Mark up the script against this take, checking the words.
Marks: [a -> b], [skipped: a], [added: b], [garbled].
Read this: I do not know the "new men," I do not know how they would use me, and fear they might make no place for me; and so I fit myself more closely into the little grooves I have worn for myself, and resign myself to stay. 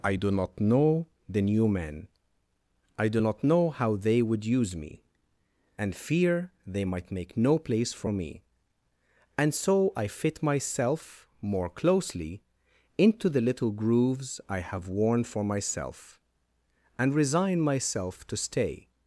I do not know the "new men," I do not know how they would use me, and fear they might make no place for me; and so I fit myself more closely into the little grooves I have worn for myself, and resign myself to stay.